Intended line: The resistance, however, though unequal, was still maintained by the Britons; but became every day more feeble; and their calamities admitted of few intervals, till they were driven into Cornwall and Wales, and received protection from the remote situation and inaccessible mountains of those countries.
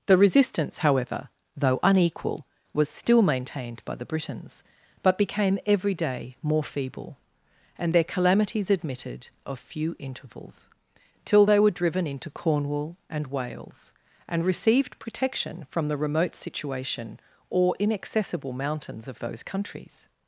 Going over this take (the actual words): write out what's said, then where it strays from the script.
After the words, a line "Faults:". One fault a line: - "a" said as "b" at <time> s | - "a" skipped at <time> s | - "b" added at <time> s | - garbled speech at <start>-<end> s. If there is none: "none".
The resistance, however, though unequal, was still maintained by the Britons; but became every day more feeble; and their calamities admitted of few intervals, till they were driven into Cornwall and Wales, and received protection from the remote situation or inaccessible mountains of those countries.
Faults:
- "and" said as "or" at 17.5 s